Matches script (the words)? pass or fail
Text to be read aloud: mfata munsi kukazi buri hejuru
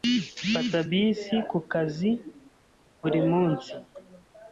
fail